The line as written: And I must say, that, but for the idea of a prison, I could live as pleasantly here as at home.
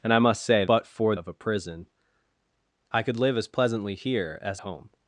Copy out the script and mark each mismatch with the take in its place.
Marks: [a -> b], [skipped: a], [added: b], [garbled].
And I must say, [skipped: that,] but for [skipped: the idea] of a prison, I could live as pleasantly here as [skipped: at] home.